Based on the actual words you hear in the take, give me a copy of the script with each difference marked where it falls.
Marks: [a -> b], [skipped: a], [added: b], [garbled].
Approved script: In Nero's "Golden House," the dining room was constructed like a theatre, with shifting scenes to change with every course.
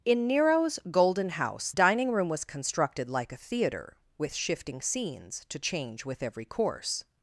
In Nero's "Golden House," [skipped: the] dining room was constructed like a theatre, with shifting scenes to change with every course.